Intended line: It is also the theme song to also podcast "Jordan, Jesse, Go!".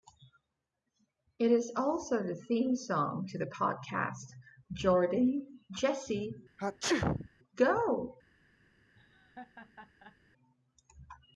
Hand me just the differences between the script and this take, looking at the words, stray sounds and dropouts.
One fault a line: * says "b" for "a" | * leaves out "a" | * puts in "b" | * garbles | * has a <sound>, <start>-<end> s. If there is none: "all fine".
* says "the" for "also"
* has a sneeze, 6.6-7.3 s
* has a laugh, 8.9-10.2 s